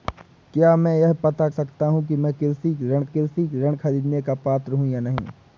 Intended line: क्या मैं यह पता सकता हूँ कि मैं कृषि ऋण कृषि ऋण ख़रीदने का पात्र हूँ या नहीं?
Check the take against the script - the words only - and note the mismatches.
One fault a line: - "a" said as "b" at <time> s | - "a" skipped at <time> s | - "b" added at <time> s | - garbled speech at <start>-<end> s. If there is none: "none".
none